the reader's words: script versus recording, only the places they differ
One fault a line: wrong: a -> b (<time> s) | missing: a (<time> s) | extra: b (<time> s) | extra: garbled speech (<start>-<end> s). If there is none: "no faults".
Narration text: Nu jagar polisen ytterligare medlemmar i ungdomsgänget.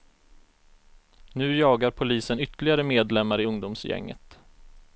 no faults